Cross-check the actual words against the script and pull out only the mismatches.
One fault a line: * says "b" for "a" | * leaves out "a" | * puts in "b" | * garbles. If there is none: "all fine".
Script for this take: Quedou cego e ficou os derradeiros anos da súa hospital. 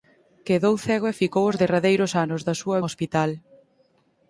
all fine